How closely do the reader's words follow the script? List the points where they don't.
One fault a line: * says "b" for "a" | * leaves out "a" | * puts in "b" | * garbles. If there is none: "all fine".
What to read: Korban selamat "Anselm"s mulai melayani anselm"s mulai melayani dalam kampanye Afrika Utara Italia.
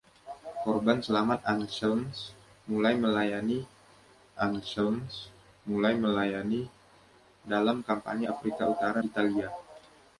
all fine